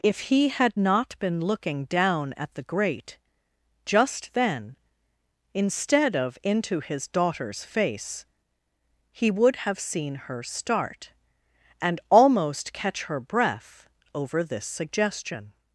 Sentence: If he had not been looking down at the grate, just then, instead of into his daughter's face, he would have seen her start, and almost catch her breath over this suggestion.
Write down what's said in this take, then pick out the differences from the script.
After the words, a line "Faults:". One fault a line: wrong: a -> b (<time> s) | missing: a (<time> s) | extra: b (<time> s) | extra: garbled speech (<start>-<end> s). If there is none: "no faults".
If he had not been looking down at the grate, just then, instead of into his daughter's face, he would have seen her start, and almost catch her breath over this suggestion.
Faults:
no faults